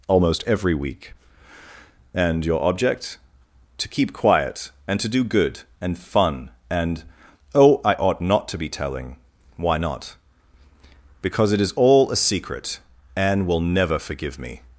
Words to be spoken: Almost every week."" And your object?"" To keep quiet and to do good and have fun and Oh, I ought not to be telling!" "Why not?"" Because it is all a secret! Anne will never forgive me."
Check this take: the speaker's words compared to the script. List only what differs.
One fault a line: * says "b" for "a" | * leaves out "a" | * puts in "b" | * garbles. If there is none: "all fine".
* leaves out "have"